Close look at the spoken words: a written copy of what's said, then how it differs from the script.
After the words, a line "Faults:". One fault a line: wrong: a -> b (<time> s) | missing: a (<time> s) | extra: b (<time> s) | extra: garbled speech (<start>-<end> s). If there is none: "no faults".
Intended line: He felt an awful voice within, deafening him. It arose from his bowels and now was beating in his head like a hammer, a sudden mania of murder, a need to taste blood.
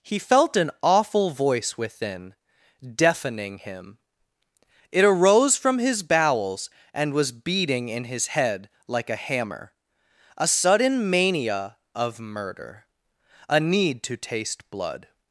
He felt an awful voice within, deafening him. It arose from his bowels and was beating in his head like a hammer, a sudden mania of murder, a need to taste blood.
Faults:
missing: now (7.1 s)